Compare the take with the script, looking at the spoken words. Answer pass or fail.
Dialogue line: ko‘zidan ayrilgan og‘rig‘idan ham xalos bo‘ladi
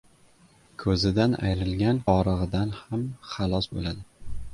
pass